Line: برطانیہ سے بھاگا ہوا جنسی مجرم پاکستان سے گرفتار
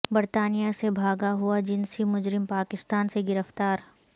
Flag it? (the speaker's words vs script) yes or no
no